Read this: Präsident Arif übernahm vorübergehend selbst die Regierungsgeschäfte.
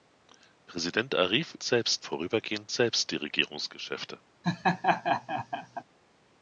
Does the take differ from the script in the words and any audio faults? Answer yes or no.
yes